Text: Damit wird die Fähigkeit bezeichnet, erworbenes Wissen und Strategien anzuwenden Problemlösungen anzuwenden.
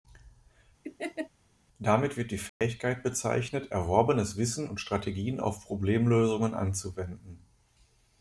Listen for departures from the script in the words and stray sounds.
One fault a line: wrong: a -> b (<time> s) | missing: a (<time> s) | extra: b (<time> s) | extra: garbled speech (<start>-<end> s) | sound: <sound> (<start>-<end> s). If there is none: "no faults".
sound: laugh (0.8-1.3 s)
sound: dropout (2.5-2.6 s)
wrong: anzuwenden -> auf (5.4 s)